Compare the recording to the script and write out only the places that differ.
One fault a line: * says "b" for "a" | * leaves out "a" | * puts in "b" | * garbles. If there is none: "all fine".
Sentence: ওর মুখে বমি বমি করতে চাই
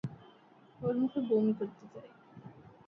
* leaves out "বমি"